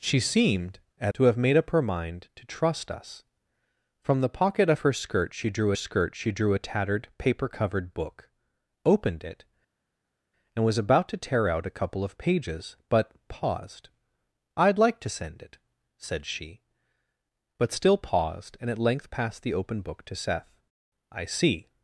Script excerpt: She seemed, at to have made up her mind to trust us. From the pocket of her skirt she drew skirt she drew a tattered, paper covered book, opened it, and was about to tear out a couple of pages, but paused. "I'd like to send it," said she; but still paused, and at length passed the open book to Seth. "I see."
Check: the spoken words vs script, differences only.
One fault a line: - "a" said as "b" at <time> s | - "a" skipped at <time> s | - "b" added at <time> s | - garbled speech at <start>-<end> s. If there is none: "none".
none